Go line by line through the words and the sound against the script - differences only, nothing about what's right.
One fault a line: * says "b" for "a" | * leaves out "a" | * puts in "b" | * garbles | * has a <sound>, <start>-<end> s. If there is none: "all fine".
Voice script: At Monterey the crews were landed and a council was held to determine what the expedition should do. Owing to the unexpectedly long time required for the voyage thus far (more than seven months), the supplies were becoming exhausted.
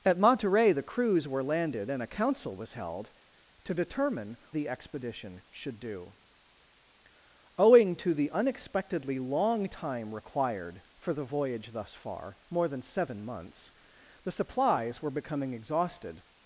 * leaves out "what"